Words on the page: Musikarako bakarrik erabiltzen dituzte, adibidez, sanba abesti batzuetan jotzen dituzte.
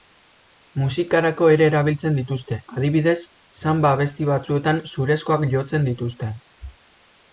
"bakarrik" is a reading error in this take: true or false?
true